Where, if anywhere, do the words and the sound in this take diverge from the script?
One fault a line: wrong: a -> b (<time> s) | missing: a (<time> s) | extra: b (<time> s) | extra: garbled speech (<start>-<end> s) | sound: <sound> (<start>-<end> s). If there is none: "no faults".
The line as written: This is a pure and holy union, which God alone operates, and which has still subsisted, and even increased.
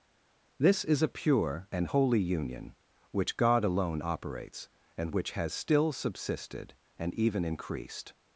no faults